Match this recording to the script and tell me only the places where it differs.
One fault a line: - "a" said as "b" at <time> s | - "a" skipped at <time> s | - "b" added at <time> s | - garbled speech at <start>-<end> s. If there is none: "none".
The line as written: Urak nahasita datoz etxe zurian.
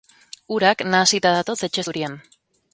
none